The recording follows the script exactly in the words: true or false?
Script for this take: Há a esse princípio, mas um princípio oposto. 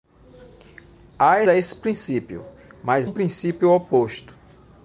true